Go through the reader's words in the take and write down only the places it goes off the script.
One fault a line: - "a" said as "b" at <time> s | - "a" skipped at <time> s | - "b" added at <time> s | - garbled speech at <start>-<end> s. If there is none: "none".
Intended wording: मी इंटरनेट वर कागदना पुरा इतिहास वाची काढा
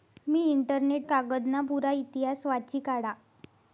- "वर" skipped at 1.1 s